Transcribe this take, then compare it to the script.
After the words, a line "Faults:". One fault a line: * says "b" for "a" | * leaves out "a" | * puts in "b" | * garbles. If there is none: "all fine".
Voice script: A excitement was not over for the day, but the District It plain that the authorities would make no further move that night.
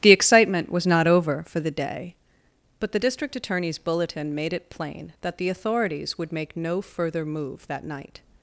The excitement was not over for the day, but the District Attorney's bulletin made it plain that the authorities would make no further move that night.
Faults:
* says "The" for "A"
* puts in "Attorney's bulletin made"